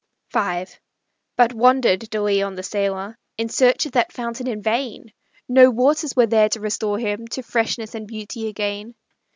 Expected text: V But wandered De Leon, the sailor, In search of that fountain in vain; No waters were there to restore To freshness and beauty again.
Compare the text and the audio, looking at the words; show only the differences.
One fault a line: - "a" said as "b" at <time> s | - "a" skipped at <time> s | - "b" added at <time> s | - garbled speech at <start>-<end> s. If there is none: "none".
- "him" added at 7.0 s